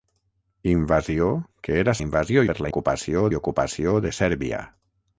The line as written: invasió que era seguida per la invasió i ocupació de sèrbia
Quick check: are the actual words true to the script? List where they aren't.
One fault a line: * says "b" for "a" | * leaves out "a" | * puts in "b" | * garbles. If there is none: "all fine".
* says "invasió" for "seguida"
* says "ocupació" for "invasió"